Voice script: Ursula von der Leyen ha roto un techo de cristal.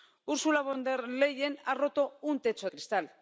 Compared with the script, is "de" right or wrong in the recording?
wrong